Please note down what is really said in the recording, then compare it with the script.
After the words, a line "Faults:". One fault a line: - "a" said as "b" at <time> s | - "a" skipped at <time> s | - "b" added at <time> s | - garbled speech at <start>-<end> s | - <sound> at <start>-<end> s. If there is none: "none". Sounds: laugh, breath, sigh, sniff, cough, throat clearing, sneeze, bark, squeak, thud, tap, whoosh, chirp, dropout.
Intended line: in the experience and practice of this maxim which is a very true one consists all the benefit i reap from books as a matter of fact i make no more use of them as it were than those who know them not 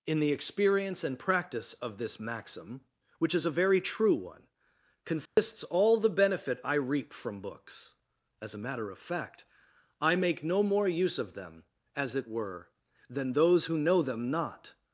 in the experience and practice of this maxim which is a very true one consists all the benefit i reap from books as a matter of fact i make no more use of them as it were than those who know them not
Faults:
- dropout at 5.3-5.4 s